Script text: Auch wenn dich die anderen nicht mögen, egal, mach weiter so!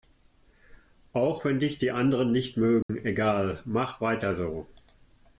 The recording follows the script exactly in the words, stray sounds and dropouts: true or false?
false